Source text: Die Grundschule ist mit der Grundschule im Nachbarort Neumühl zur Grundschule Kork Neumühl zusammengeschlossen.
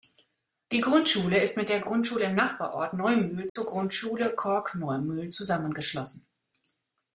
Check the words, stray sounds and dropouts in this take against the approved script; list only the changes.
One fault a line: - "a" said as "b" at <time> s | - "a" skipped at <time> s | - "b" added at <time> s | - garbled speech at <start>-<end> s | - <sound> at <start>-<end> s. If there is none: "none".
- dropout at 3.5-3.6 s